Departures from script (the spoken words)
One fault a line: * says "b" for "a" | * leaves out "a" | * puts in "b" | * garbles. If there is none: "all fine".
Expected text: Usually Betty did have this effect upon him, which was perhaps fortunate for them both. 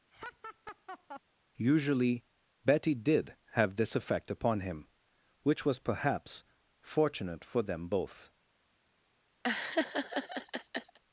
all fine